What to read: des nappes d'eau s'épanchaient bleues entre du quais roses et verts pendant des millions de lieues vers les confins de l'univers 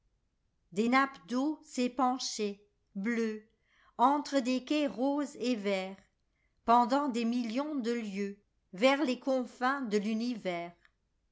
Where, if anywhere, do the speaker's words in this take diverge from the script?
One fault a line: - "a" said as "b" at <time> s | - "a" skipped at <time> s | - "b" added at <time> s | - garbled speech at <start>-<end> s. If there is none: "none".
- "du" said as "des" at 4.4 s